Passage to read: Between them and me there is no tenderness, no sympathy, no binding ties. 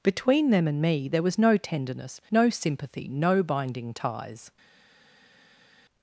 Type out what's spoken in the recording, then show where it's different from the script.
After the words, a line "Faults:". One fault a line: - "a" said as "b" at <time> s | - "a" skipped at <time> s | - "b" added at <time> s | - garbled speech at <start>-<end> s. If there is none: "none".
Between them and me there was no tenderness, no sympathy, no binding ties.
Faults:
- "is" said as "was" at 1.2 s